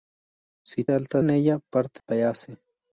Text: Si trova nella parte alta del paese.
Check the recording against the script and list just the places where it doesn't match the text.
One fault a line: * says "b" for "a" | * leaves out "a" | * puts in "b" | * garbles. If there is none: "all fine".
* says "alta" for "trova"
* leaves out "alta del"